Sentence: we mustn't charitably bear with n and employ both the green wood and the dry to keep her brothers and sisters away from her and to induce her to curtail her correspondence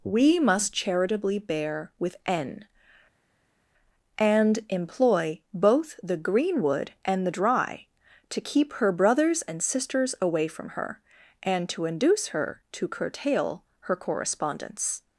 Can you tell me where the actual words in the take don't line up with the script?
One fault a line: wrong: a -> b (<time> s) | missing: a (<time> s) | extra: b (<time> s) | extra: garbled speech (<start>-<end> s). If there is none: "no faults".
wrong: mustn't -> must (0.4 s)